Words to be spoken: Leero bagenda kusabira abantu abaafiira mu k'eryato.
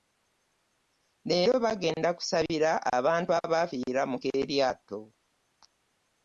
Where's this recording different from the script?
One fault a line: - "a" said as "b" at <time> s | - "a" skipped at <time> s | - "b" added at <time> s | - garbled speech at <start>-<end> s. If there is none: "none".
none